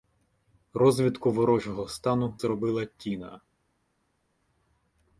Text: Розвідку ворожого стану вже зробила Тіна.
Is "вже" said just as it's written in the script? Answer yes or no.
no